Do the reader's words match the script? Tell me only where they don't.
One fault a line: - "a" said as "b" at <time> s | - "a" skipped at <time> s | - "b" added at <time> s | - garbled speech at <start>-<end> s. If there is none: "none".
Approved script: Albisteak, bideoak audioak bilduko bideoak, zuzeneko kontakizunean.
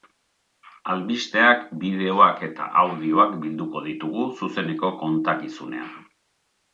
- "eta" added at 2.5 s
- "bideoak" said as "ditugu" at 3.9 s